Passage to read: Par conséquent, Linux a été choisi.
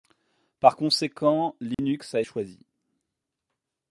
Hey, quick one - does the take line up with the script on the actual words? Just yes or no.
no